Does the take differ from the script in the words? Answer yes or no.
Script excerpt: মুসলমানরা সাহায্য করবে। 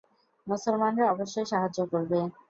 yes